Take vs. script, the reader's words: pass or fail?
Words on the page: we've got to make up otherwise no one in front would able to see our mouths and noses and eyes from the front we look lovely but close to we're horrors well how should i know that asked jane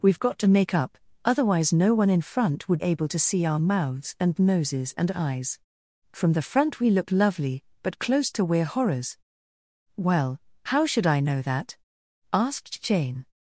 pass